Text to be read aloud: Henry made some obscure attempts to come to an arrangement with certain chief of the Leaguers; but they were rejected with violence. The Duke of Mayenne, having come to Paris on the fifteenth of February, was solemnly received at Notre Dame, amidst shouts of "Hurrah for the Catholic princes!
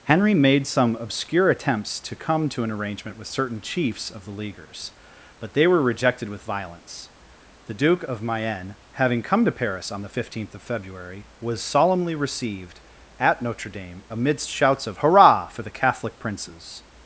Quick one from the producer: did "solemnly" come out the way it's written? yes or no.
yes